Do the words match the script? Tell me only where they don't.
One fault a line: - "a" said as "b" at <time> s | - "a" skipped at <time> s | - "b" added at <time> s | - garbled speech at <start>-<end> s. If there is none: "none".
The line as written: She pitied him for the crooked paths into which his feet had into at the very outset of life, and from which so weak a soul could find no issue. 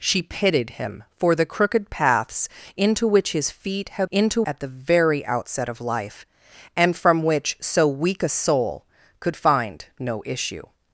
none